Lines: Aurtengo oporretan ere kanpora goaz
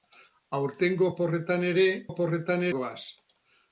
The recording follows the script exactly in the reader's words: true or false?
false